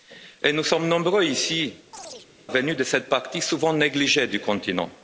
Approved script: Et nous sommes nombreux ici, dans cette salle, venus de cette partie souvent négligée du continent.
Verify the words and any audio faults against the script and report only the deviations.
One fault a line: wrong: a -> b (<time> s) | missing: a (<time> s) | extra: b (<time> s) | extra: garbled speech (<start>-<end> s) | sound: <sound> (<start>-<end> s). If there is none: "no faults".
missing: dans cette salle (1.7 s)
sound: chirp (1.9-2.3 s)